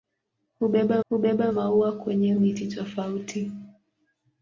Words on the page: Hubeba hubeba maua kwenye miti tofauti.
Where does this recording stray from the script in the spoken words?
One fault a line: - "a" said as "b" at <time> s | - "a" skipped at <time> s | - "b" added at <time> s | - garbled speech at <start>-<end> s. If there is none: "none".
none